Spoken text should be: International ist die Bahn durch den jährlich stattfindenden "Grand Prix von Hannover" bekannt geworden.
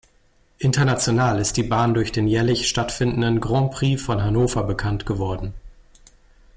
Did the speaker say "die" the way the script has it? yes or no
yes